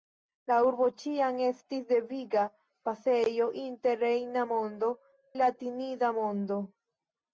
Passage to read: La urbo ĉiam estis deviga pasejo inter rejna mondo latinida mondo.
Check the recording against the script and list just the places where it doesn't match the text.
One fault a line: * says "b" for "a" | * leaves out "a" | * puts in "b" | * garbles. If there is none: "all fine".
all fine